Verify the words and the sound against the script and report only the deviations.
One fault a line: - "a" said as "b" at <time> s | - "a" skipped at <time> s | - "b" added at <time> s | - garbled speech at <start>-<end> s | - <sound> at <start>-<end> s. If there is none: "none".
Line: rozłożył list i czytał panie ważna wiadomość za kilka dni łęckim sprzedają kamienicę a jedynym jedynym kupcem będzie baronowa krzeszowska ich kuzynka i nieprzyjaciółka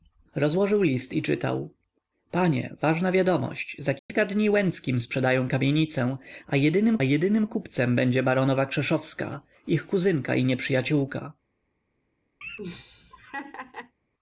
- dropout at 4.0-4.1 s
- laugh at 12.4-13.9 s